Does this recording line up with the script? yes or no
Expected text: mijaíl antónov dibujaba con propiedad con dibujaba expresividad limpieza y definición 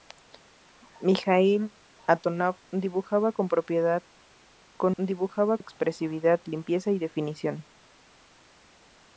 yes